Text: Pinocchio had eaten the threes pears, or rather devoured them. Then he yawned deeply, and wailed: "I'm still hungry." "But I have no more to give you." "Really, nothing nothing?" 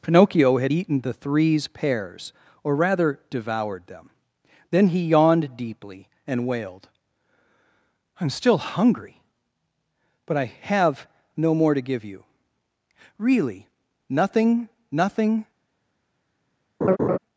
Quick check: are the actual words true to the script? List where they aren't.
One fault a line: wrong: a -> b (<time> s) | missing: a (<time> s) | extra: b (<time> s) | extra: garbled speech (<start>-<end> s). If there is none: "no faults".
no faults